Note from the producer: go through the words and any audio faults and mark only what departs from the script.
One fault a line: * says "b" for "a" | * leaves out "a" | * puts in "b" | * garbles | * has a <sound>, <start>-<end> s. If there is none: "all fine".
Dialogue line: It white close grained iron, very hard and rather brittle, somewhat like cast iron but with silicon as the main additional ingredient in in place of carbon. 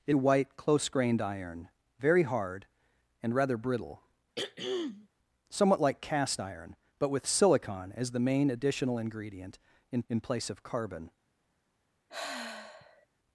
* has a throat clearing, 4.4-5.1 s
* has a sigh, 12.1-13.1 s